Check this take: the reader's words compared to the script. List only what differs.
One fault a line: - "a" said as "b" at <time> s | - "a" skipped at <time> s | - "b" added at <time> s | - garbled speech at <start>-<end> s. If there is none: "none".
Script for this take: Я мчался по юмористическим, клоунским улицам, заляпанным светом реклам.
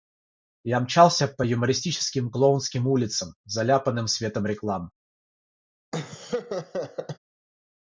none